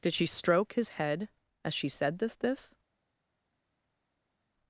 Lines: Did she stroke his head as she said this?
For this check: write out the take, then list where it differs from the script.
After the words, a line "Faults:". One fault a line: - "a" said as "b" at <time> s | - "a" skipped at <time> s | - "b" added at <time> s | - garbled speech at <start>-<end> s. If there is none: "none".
Did she stroke his head as she said this this?
Faults:
- "this" added at 2.4 s